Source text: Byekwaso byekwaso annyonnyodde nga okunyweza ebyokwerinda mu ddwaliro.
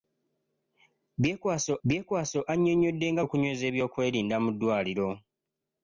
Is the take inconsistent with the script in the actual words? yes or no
no